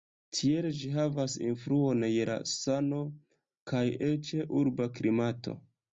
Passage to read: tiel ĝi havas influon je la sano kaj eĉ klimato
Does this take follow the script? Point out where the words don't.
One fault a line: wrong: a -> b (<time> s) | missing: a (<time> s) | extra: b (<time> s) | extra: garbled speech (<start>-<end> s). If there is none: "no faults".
extra: urba (4.6 s)